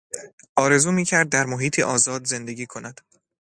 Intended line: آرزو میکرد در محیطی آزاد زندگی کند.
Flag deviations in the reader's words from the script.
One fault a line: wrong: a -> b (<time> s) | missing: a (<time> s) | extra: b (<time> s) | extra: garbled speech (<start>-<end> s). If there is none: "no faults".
no faults